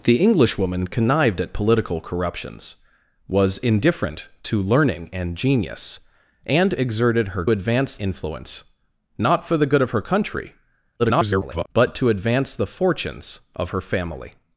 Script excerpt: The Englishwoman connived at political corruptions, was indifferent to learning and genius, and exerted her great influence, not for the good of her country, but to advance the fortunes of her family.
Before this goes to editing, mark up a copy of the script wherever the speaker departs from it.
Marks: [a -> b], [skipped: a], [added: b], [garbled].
The Englishwoman connived at political corruptions, was indifferent to learning and genius, and exerted her [great -> advance] influence, not for the good of her country, [garbled] but to advance the fortunes of her family.